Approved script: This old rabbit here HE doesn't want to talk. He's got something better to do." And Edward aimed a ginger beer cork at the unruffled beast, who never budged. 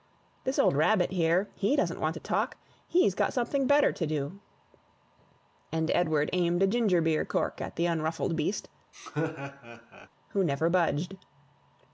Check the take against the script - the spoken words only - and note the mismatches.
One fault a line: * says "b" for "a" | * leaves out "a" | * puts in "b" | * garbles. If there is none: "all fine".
all fine